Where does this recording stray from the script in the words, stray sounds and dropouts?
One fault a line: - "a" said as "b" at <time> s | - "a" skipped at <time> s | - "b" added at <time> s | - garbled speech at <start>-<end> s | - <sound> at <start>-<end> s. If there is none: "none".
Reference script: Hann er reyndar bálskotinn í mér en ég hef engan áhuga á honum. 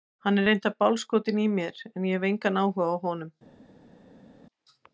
none